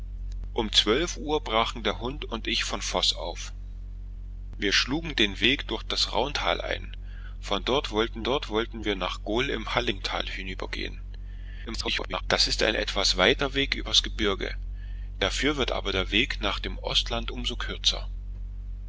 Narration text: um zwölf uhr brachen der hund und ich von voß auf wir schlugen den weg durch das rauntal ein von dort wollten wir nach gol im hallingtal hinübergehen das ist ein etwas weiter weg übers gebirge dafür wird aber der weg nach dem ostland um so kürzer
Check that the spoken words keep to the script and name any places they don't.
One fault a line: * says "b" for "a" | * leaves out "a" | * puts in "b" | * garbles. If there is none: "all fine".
* puts in "dort wollten"
* garbles